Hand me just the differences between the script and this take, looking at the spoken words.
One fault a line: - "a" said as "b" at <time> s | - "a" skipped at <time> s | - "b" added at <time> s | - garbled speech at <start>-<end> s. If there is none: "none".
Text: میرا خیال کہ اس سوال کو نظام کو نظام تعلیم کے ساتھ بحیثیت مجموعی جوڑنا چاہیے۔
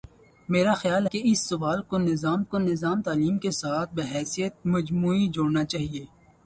none